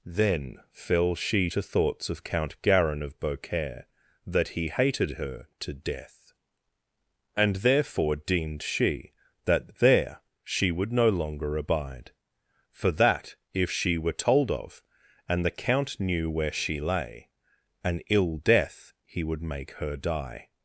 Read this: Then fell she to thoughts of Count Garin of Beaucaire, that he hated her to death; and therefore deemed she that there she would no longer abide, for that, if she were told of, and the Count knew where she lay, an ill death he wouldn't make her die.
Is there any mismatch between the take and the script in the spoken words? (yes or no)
yes